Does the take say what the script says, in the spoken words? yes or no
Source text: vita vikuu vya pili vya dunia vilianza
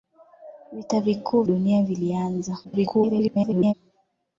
no